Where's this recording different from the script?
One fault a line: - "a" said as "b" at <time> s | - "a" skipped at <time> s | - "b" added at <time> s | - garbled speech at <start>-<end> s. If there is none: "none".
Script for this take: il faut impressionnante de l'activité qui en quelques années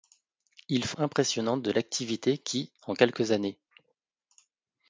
none